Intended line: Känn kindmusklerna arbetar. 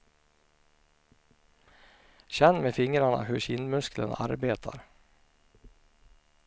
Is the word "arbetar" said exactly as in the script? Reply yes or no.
yes